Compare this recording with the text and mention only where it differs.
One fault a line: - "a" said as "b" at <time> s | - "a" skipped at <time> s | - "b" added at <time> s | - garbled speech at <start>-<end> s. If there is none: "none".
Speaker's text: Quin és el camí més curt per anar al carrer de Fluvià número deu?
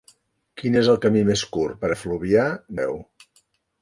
- "anar al carrer" skipped at 1.9 s
- "número" skipped at 2.5 s